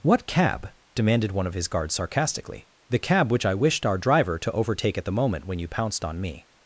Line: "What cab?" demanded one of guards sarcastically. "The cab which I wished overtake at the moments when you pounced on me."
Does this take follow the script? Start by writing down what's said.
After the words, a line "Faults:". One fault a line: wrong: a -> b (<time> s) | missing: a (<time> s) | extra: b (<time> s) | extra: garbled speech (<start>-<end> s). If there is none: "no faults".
"What cab?" demanded one of his guards sarcastically. "The cab which I wished our driver to overtake at the moment when you pounced on me."
Faults:
extra: his (1.5 s)
extra: our driver to (3.9 s)
wrong: moments -> moment (5.1 s)